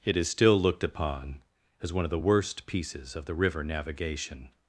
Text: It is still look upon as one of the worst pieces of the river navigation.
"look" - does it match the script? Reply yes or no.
no